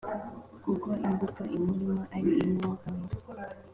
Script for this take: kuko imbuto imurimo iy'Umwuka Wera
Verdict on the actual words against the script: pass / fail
fail